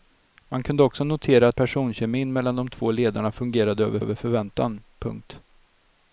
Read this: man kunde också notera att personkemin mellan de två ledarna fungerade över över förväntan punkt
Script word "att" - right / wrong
right